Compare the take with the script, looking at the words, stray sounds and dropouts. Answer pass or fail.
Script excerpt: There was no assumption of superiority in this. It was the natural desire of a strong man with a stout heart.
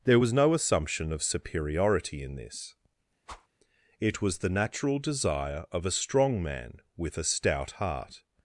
fail